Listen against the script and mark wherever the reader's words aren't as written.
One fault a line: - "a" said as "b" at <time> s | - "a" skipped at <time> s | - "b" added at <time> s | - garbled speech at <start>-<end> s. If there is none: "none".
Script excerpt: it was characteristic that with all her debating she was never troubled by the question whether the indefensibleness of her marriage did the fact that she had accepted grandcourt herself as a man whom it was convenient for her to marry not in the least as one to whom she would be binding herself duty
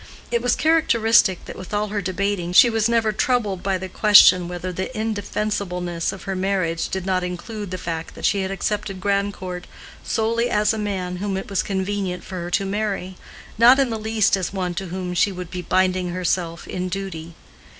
- "not include" added at 7.0 s
- "herself" said as "solely" at 10.0 s
- "in" added at 16.6 s